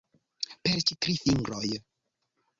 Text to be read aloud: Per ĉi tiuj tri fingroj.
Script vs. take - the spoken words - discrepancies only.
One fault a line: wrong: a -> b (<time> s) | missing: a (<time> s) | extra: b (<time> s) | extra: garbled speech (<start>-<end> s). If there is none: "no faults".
missing: tiuj (0.9 s)